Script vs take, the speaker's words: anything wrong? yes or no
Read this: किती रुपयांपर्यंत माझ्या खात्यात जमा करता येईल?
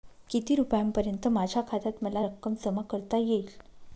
yes